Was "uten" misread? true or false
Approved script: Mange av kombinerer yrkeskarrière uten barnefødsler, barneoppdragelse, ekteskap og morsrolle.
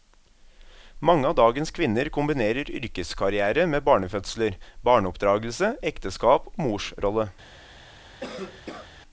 true